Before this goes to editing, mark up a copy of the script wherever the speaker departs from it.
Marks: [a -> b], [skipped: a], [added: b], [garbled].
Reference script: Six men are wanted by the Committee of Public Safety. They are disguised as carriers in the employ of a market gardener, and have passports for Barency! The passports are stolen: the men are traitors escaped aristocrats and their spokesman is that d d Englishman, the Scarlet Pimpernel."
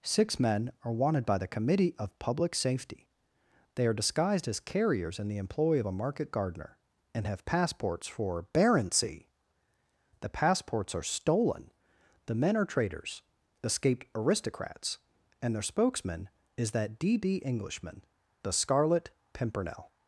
Six men are wanted by the Committee of Public Safety. They are disguised as carriers in the employ of a market gardener, and have passports for Barency! The passports are stolen: the men are traitors escaped aristocrats and their spokesman is that d d Englishman, the Scarlet Pimpernel."